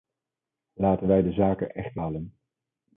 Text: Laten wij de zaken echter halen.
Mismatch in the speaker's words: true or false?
false